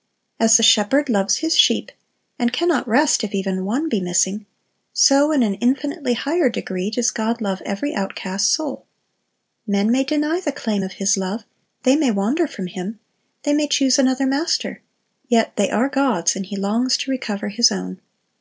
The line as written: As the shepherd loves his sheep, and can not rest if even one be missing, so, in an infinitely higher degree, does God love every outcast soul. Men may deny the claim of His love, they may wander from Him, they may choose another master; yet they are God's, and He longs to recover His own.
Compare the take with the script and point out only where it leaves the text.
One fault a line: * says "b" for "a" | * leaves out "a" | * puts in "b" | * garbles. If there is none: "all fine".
all fine